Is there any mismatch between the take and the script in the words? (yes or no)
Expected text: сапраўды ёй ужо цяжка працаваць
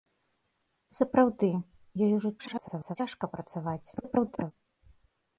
yes